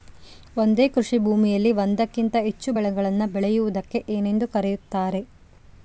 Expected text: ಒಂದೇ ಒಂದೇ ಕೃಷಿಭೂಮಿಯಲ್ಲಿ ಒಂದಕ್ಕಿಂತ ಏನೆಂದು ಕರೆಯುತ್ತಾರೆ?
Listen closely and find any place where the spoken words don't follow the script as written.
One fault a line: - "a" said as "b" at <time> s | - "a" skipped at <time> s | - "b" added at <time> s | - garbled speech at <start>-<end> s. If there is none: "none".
- "ಒಂದೇ" skipped at 0.9 s
- "ಹೆಚ್ಚು ಬೆಳೆಗಳನ್ನು ಬೆಳೆಯುವುದಕ್ಕೆ" added at 2.4 s